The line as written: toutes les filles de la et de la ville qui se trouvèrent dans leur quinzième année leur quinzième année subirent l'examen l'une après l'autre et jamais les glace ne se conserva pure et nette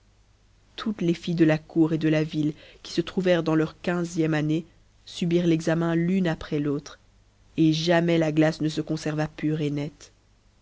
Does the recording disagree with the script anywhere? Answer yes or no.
yes